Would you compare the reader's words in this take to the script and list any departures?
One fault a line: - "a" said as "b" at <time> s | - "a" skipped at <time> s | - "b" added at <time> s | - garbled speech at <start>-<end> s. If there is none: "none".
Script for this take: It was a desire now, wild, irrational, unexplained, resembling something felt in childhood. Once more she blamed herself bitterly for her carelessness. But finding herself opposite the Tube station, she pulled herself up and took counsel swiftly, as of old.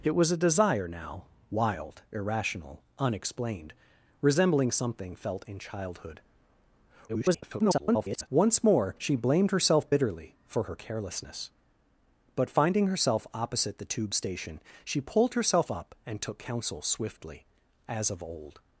- garbled speech at 7.1-8.3 s